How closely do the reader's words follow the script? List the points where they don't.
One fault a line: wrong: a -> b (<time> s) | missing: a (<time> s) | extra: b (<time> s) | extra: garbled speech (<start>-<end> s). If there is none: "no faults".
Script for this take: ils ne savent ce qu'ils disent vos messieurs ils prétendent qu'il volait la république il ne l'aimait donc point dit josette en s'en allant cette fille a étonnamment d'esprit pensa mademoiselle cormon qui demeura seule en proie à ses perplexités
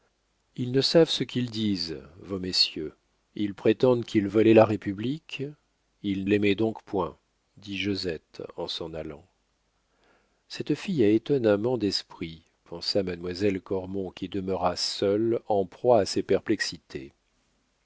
missing: ne (6.3 s)